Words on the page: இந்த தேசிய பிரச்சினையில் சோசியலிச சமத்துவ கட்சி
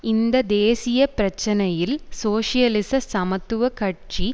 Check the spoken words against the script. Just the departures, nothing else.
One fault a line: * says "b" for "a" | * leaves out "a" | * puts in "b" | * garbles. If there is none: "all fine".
all fine